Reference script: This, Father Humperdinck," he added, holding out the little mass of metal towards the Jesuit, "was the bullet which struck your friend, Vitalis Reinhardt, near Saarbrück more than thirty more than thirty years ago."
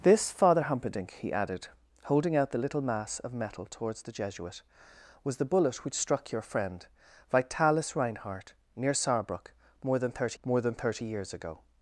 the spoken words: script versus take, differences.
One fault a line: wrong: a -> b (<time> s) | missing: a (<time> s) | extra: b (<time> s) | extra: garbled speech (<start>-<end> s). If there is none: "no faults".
no faults